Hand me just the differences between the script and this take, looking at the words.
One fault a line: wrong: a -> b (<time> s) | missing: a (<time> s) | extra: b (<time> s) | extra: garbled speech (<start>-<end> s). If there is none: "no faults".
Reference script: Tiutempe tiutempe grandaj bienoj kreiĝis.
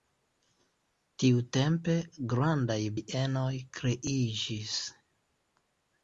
missing: tiutempe (2.0 s)